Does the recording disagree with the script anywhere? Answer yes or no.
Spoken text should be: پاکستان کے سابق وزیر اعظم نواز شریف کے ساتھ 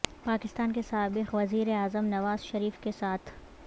no